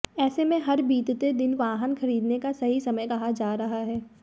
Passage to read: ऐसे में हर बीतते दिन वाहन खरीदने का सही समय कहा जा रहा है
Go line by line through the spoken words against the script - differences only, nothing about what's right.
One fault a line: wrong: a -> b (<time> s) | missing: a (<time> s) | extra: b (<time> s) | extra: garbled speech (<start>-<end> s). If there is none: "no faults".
no faults